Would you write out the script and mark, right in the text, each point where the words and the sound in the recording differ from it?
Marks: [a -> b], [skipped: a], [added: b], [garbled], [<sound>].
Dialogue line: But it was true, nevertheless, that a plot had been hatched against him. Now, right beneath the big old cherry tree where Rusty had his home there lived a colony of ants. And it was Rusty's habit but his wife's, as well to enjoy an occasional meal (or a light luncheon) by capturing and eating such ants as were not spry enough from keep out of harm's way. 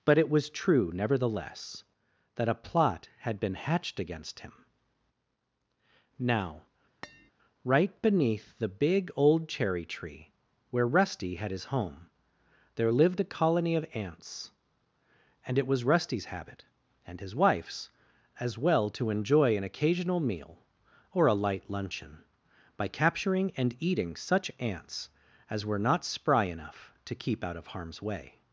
But it was true, nevertheless, that a plot had been hatched against him. Now, [tap] right beneath the big old cherry tree where Rusty had his home there lived a colony of ants. And it was Rusty's habit [but -> and] his wife's, as well to enjoy an occasional meal (or a light luncheon) by capturing and eating such ants as were not spry enough [from -> to] keep out of harm's way.